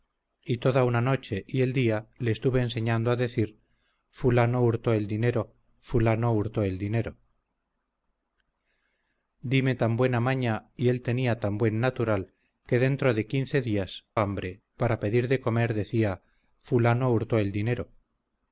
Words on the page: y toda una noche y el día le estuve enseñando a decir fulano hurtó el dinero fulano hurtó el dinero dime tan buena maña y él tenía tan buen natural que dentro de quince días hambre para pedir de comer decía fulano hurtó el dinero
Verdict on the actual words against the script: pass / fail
pass